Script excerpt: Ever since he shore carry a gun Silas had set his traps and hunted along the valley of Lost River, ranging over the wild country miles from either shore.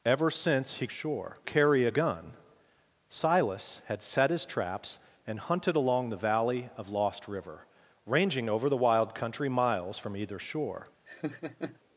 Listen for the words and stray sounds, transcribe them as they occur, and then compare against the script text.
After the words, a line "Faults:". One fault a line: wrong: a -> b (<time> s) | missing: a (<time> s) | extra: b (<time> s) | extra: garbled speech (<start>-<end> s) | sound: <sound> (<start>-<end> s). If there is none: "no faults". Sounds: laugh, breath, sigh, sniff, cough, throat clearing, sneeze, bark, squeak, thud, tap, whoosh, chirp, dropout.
Ever since he shore carry a gun Silas had set his traps and hunted along the valley of Lost River, ranging over the wild country miles from either shore.
Faults:
sound: laugh (11.1-11.8 s)